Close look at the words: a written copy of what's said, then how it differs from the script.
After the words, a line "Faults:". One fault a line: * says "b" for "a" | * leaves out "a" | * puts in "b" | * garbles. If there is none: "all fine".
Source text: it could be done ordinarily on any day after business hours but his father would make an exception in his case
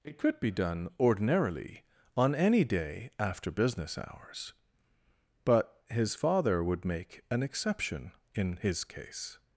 it could be done ordinarily on any day after business hours but his father would make an exception in his case
Faults:
all fine